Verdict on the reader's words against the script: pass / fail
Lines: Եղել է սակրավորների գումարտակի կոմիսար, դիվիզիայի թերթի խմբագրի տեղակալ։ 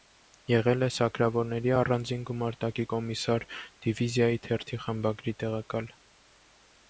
fail